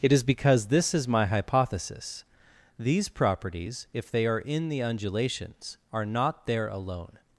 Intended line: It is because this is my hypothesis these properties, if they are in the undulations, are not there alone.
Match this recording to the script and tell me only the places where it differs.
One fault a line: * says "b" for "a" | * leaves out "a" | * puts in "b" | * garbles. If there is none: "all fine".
all fine